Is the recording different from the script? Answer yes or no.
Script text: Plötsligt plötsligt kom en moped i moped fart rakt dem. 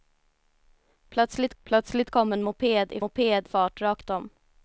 no